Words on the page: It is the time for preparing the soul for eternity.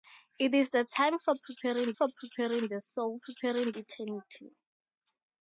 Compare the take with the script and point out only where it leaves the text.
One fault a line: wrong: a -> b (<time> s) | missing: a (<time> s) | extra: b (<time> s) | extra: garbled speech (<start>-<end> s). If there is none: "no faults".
extra: for preparing (1.9 s)
wrong: for -> preparing (3.2 s)